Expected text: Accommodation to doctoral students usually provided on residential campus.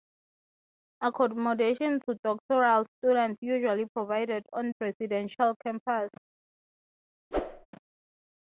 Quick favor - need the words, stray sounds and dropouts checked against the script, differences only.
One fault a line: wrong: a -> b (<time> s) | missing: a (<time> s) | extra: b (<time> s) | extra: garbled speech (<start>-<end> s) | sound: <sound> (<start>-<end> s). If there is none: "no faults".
sound: whoosh (7.3-7.7 s)